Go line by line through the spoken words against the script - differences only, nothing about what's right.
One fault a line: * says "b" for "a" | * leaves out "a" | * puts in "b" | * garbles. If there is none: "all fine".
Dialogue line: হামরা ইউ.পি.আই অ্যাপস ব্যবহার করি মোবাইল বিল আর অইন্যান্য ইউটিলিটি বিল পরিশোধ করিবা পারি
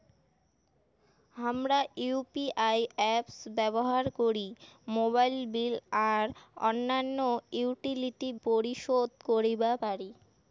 * leaves out "বিল"